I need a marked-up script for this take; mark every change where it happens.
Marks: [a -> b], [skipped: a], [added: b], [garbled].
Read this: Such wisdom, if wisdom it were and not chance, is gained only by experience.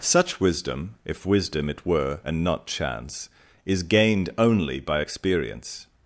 Such wisdom, if wisdom it were and not chance, is gained only by experience.